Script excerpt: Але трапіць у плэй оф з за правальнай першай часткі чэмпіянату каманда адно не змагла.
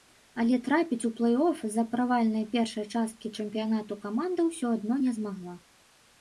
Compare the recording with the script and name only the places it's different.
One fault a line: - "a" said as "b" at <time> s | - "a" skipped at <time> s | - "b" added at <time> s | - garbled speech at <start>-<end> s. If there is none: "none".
- "ўсё" added at 4.5 s